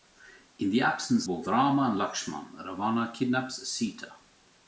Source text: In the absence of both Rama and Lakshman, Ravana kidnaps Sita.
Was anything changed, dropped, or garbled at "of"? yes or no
yes